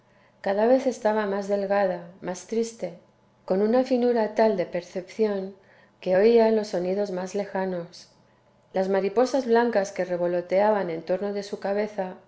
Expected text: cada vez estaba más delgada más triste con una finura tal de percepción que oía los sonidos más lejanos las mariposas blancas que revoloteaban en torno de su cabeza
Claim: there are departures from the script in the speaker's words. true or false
false